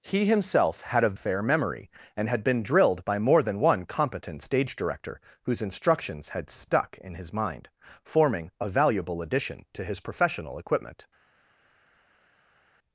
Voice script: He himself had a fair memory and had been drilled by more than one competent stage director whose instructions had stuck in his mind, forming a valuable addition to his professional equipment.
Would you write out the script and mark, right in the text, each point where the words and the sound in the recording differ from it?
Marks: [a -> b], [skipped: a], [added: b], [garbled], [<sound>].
He himself had a fair memory and had been drilled by more than one competent stage director whose instructions had stuck in his mind, forming a valuable addition to his professional equipment.